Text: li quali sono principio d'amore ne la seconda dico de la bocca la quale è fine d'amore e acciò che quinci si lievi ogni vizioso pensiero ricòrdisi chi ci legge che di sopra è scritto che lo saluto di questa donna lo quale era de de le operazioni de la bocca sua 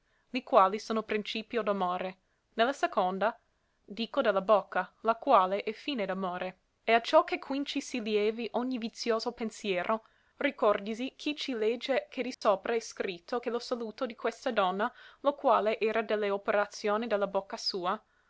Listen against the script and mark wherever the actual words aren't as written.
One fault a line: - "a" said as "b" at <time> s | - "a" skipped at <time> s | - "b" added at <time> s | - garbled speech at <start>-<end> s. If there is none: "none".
- "de" skipped at 16.1 s